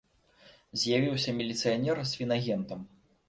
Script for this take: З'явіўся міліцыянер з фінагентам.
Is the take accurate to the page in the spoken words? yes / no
yes